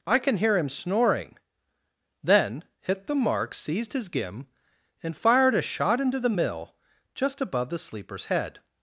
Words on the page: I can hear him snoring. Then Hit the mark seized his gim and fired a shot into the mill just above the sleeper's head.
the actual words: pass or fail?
pass